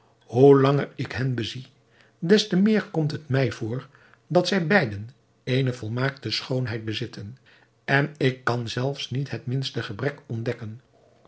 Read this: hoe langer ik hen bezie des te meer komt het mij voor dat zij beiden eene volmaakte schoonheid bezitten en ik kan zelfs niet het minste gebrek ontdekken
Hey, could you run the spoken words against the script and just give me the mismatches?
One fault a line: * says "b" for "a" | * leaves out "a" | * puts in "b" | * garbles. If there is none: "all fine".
all fine